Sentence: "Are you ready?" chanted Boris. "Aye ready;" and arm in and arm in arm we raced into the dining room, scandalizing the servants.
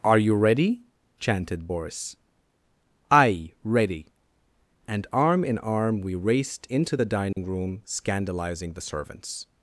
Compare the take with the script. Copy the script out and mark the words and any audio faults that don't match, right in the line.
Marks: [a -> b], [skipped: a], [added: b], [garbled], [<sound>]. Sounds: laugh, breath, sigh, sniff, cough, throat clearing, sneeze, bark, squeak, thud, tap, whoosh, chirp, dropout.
"Are you ready?" chanted Boris. "Aye ready;" and arm in [skipped: and arm in] arm we raced into the dining [dropout] room, scandalizing the servants.